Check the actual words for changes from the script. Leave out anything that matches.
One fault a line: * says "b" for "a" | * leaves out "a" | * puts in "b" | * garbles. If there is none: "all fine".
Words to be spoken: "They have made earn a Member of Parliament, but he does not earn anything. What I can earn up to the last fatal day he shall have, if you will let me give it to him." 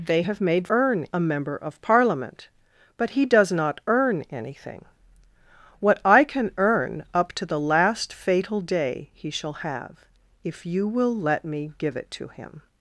all fine